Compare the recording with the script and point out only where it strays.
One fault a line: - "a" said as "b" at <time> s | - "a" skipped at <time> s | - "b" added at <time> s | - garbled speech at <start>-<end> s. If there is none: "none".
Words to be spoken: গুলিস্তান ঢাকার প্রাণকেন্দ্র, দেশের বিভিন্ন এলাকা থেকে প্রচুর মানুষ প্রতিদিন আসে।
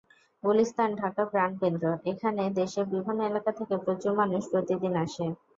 - "এখানে" added at 2.1 s